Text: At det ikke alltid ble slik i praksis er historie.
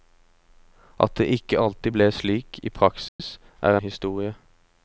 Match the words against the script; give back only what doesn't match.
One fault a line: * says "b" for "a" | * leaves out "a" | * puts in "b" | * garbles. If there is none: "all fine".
all fine